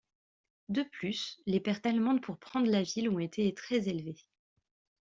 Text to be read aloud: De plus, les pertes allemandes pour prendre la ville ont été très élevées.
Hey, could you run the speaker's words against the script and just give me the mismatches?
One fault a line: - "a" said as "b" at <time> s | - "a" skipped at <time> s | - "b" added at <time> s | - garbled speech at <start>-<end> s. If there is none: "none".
none